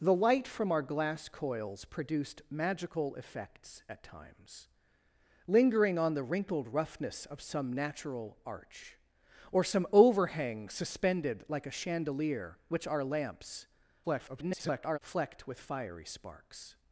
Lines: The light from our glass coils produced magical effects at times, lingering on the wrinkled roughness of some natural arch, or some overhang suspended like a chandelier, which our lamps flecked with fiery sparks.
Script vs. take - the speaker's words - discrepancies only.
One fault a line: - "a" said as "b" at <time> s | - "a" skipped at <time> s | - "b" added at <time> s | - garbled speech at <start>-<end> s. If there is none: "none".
- garbled speech at 14.0-15.0 s